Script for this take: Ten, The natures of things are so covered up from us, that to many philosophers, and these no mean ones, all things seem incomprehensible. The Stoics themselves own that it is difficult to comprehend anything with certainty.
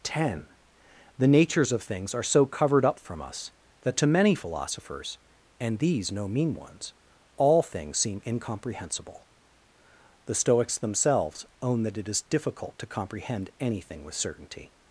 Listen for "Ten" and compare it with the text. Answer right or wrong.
right